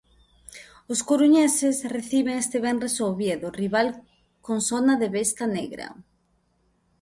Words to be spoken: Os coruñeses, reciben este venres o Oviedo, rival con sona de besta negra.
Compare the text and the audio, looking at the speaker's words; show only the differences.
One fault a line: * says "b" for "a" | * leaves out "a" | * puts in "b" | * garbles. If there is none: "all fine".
all fine